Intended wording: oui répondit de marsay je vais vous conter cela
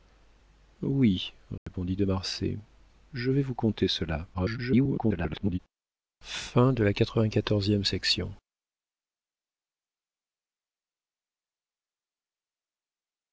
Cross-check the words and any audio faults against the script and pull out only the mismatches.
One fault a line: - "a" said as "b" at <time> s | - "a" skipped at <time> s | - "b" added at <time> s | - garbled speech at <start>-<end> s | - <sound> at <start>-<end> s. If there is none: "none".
- dropout at 1.6-1.7 s
- garbled speech at 4.3-5.6 s